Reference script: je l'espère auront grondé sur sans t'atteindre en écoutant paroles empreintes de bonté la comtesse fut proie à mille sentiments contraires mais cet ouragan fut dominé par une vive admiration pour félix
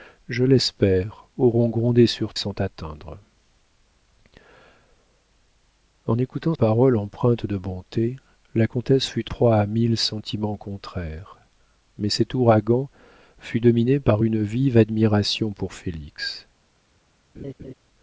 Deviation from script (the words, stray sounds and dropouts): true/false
true